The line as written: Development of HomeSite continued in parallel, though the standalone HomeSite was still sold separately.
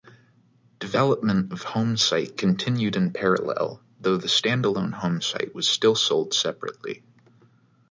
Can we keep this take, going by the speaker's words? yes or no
yes